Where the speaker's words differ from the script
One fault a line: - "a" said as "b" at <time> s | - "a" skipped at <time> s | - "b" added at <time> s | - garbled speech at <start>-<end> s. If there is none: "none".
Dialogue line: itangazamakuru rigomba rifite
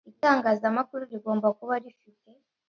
- "kuba" added at 1.6 s